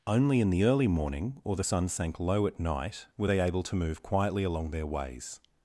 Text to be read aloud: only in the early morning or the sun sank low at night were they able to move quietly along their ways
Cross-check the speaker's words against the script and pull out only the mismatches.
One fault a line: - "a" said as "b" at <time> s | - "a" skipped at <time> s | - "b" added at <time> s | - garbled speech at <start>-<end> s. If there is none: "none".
none